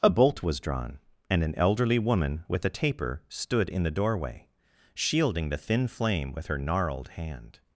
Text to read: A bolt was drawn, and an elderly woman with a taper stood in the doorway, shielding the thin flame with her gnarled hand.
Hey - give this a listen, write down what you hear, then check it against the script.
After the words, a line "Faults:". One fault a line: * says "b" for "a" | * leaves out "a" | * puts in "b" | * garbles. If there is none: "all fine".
A bolt was drawn, and an elderly woman with a taper stood in the doorway, shielding the thin flame with her gnarled hand.
Faults:
all fine